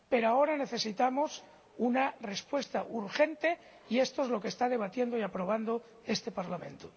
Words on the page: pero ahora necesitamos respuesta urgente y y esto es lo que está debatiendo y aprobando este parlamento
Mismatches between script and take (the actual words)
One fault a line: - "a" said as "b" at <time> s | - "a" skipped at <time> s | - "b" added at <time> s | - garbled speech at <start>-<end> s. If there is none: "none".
- "una" added at 1.8 s
- "y" skipped at 4.0 s